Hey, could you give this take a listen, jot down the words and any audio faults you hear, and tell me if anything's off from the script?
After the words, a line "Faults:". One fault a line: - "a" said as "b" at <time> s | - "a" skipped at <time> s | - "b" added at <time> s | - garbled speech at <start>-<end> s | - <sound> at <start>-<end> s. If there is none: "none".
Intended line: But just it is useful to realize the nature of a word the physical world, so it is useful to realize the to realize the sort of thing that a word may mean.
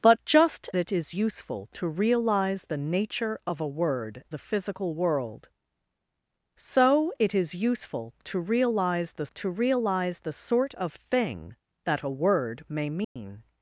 But just it is useful to realize the nature of a word the physical world, so it is useful to realize the to realize the sort of thing that a word may mean.
Faults:
- dropout at 13.0-13.2 s